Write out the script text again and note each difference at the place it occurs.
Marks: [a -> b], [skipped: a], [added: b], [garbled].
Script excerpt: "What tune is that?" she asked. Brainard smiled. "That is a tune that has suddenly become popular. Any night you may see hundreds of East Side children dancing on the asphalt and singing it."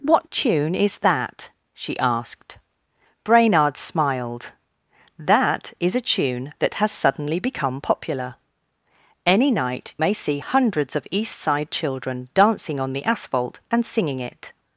"What tune is that?" she asked. Brainard smiled. "That is a tune that has suddenly become popular. Any night [skipped: you] may see hundreds of East Side children dancing on the asphalt and singing it."